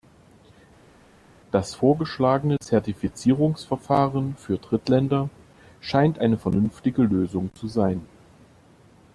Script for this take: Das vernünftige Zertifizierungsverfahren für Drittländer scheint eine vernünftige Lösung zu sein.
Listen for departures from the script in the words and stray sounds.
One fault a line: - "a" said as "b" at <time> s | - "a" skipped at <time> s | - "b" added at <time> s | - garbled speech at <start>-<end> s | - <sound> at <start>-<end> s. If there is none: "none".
- "vernünftige" said as "vorgeschlagene" at 1.7 s